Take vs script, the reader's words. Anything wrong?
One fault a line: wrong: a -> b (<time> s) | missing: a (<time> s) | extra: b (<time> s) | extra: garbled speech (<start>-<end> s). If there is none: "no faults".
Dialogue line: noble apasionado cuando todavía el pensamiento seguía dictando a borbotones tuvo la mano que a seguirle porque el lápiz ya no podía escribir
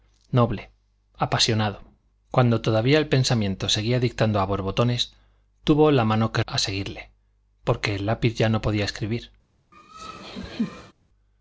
no faults